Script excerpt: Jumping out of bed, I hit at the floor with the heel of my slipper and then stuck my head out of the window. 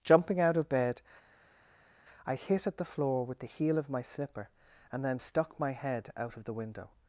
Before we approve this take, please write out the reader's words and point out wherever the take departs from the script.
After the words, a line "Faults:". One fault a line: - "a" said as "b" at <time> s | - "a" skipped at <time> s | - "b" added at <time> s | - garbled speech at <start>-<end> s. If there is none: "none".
Jumping out of bed, I hit at the floor with the heel of my slipper and then stuck my head out of the window.
Faults:
none